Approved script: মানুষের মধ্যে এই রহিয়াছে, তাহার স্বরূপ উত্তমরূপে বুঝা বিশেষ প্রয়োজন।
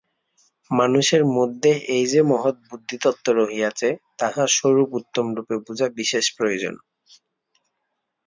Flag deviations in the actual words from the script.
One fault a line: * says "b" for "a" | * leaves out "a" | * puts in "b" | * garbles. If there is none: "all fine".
* puts in "যে মহৎ বুদ্ধিতত্ত্ব"